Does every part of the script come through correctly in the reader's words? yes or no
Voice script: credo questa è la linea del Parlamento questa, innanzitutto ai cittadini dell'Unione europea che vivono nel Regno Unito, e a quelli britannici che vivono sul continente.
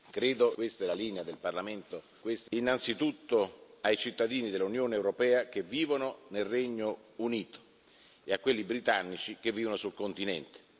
yes